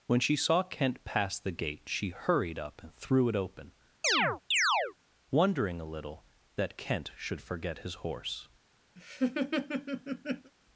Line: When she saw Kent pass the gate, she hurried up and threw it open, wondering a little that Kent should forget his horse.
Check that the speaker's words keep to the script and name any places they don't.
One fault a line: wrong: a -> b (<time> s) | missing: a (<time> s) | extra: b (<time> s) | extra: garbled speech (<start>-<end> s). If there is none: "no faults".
no faults